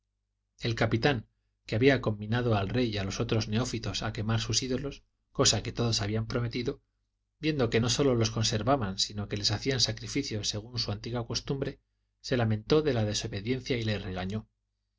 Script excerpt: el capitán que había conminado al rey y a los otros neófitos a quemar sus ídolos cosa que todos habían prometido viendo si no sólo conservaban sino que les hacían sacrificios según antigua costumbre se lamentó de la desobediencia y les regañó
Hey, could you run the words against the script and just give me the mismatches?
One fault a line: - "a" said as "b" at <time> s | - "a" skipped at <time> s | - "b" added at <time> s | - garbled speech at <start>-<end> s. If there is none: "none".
- "si" said as "que" at 7.7 s
- "los" added at 8.2 s
- "su" added at 10.8 s